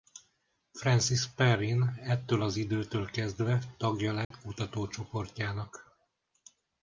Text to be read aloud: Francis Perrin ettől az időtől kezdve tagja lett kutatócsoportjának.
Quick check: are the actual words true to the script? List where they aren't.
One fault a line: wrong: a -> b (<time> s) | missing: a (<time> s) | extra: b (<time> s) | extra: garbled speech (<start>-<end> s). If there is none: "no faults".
no faults